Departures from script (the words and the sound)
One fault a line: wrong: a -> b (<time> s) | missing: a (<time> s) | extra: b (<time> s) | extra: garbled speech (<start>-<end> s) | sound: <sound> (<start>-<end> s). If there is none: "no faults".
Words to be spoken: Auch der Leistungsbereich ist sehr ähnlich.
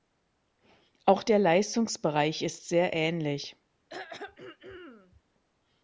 sound: throat clearing (3.9-5.2 s)